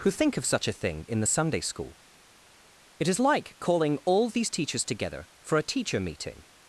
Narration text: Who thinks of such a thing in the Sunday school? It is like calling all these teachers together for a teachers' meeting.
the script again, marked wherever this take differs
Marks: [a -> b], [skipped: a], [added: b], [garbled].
Who [thinks -> think] of such a thing in the Sunday school? It is like calling all these teachers together for a [teachers' -> teacher] meeting.